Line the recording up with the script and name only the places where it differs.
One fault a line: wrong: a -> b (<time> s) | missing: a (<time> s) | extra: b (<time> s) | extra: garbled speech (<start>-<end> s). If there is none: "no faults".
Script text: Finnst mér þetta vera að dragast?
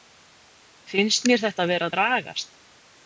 no faults